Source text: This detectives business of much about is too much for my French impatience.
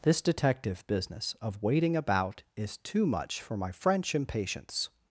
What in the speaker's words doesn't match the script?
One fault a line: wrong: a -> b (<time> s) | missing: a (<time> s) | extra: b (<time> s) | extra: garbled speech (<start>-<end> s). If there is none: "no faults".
wrong: detectives -> detective (0.2 s)
wrong: much -> waiting (1.6 s)